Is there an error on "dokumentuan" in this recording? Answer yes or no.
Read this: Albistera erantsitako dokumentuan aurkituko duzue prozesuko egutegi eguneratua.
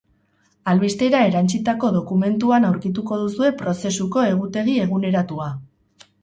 no